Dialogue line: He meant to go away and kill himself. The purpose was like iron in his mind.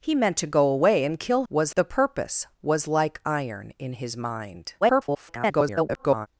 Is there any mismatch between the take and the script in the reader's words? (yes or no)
yes